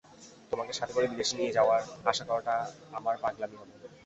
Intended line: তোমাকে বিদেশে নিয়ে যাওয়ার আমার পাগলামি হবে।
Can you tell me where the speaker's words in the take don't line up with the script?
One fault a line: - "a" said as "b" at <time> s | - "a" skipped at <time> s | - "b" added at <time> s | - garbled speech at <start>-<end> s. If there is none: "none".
- "সাথে করে" added at 0.7 s
- "আশা করাটা" added at 2.0 s